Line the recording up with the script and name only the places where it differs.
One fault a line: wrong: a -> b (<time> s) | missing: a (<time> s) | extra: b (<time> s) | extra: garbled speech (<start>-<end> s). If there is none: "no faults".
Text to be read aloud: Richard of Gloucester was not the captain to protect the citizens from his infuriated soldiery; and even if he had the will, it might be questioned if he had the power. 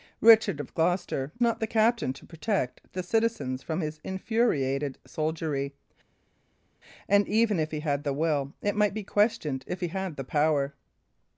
missing: was (1.3 s)